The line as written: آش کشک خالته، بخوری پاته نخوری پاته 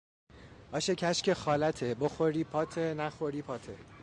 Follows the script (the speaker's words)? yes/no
yes